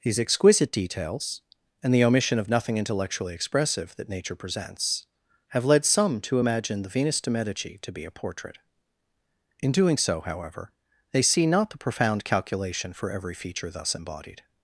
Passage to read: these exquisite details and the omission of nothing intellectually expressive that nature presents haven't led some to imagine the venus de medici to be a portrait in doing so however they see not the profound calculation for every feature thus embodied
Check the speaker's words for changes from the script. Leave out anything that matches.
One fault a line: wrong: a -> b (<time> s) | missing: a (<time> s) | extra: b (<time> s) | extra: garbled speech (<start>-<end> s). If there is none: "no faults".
wrong: haven't -> have (5.5 s)